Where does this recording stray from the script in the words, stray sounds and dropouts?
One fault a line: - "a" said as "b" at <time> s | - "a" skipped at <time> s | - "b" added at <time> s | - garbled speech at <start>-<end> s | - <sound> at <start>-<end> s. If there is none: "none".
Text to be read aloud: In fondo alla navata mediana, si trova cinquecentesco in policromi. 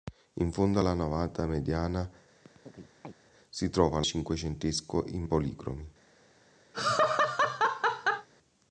- chirp at 2.4-3.1 s
- laugh at 6.7-8.3 s